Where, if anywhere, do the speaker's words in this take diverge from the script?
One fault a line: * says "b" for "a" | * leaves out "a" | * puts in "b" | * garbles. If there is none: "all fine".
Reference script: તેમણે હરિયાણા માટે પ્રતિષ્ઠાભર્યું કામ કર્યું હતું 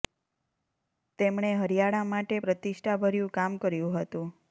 all fine